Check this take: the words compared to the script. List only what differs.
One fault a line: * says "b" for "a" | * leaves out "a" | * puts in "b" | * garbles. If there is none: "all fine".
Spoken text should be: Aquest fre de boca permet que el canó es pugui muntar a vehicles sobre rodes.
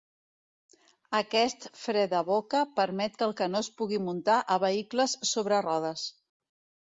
all fine